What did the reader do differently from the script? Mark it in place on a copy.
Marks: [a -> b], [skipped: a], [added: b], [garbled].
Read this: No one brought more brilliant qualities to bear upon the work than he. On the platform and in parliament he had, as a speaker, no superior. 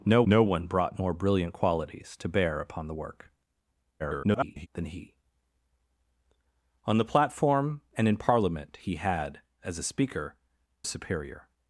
No [added: no] one brought more brilliant qualities to bear upon the work [garbled] than he. On the platform and in parliament he had, as a speaker, [skipped: no] superior.